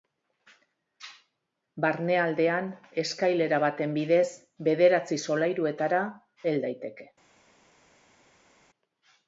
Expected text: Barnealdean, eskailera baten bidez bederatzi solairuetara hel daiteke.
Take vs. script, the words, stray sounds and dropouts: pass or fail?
pass